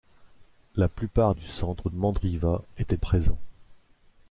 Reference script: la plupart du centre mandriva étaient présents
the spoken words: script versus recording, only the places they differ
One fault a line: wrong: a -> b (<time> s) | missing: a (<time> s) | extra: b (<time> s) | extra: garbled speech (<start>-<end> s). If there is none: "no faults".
no faults